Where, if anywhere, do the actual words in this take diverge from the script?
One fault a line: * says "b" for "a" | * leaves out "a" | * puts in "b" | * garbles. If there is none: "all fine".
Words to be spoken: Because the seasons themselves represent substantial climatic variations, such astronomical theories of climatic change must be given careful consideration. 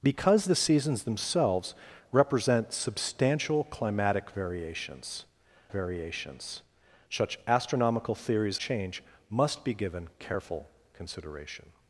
* puts in "variations"
* leaves out "of climatic"